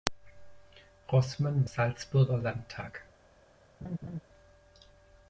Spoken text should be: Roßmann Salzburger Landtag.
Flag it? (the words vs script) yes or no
no